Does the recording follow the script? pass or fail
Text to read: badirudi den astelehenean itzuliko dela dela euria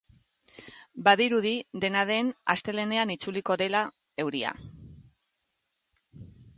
fail